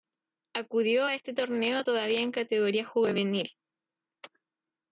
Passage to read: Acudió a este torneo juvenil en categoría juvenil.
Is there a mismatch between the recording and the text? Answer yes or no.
yes